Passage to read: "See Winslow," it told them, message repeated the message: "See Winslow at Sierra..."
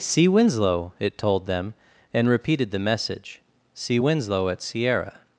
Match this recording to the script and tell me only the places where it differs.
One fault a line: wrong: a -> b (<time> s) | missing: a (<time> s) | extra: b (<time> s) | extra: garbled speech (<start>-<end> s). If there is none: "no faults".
wrong: message -> and (2.1 s)